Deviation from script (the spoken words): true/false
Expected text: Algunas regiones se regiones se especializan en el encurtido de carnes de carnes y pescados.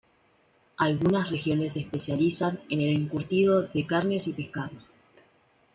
true